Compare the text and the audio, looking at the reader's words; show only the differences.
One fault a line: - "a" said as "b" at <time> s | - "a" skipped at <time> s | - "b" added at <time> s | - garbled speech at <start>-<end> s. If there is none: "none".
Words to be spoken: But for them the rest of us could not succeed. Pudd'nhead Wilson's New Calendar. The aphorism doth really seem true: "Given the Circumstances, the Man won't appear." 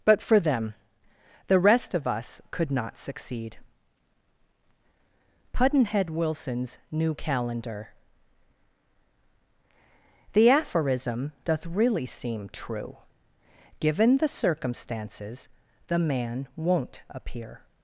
none